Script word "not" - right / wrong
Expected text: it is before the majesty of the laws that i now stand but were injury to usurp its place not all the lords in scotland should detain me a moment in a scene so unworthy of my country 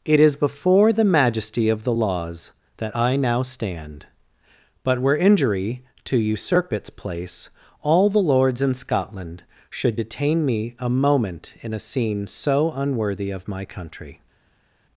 wrong